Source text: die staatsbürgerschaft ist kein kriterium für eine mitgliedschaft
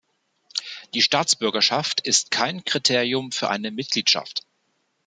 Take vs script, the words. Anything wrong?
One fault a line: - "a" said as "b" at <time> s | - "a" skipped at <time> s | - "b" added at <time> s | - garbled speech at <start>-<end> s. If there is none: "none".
none